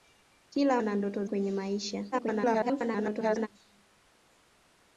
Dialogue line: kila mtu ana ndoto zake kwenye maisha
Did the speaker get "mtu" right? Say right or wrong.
wrong